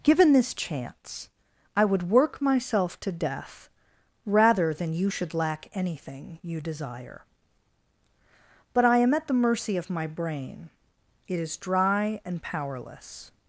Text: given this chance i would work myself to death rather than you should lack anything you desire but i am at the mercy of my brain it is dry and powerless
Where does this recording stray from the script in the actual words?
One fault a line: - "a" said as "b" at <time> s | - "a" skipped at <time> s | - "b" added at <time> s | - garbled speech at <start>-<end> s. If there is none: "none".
none